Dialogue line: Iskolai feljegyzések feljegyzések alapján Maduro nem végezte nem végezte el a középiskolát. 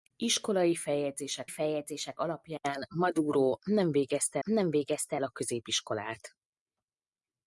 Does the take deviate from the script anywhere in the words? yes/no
no